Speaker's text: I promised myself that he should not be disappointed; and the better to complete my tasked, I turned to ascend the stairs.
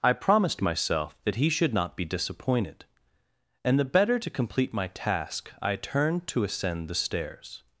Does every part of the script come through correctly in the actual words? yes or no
no